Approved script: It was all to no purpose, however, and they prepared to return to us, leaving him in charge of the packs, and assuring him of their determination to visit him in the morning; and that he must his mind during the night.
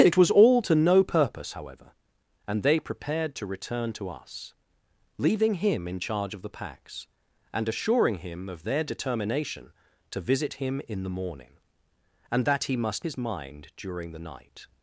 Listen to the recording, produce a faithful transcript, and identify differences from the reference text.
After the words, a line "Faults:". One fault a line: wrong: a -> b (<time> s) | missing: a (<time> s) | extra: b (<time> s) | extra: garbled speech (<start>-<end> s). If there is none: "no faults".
It was all to no purpose, however, and they prepared to return to us, leaving him in charge of the packs, and assuring him of their determination to visit him in the morning; and that he must his mind during the night.
Faults:
no faults